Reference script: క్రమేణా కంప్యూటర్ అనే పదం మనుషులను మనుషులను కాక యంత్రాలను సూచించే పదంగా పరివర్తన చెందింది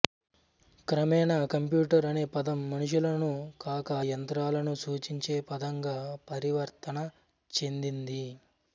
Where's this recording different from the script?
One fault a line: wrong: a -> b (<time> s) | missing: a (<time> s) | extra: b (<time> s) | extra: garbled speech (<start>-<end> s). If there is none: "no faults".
missing: మనుషులను (3.3 s)